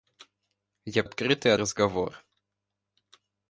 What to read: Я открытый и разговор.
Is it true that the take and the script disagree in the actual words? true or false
false